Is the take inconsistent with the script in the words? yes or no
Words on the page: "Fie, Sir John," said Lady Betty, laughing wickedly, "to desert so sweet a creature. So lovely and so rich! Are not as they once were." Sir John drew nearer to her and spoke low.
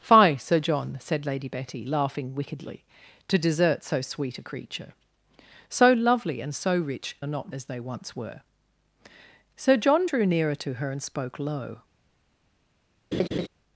no